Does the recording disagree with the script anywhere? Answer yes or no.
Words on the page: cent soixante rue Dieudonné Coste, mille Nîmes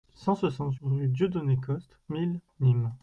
no